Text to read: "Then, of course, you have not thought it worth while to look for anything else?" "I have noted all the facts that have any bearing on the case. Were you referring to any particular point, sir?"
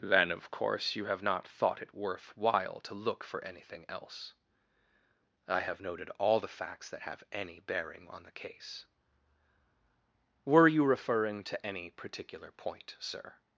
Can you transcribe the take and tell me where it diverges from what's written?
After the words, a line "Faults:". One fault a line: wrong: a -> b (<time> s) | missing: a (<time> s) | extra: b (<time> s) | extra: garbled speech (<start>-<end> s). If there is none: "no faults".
"Then, of course, you have not thought it worth while to look for anything else?" "I have noted all the facts that have any bearing on the case. Were you referring to any particular point, sir?"
Faults:
no faults